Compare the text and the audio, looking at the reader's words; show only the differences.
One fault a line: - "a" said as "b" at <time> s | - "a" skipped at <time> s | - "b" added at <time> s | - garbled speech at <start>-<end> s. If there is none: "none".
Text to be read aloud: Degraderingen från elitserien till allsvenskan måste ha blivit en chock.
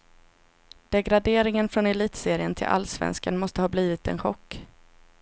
none